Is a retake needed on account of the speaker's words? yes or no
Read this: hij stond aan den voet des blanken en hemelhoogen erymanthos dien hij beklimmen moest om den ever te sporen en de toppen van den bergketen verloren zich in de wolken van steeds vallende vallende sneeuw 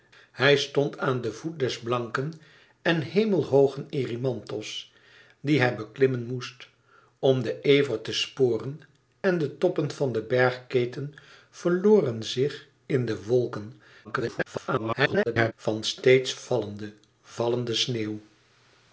yes